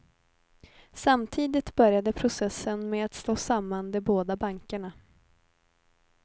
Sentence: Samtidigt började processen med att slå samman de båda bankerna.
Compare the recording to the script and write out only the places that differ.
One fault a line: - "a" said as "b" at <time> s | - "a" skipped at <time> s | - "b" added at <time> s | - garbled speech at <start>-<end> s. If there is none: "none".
none